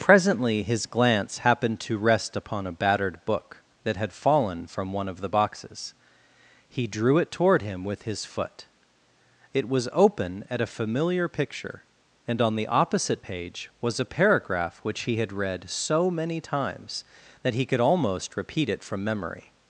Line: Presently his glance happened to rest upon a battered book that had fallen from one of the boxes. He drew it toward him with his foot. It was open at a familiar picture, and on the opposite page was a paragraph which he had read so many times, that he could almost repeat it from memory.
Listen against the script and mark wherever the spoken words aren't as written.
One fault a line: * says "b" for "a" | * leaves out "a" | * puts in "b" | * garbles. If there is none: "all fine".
all fine